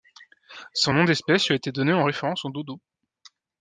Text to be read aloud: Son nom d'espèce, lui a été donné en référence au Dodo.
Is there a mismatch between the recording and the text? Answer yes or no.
no